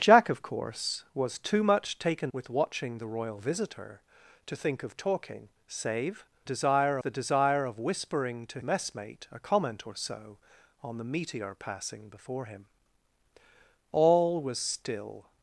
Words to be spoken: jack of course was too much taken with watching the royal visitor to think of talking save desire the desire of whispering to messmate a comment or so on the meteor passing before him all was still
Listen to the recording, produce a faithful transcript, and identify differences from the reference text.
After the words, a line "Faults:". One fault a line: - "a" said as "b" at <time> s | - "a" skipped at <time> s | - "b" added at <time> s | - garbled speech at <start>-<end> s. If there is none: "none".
jack of course was too much taken with watching the royal visitor to think of talking save desire the desire of whispering to messmate a comment or so on the meteor passing before him all was still
Faults:
none